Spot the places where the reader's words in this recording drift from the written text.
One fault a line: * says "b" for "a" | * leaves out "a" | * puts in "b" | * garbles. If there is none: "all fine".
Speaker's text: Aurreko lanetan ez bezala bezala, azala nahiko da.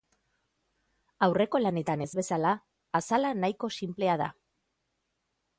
* leaves out "bezala"
* puts in "sinplea"